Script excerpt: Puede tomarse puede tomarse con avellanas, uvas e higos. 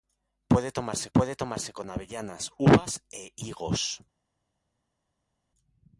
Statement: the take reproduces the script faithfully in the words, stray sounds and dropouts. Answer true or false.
true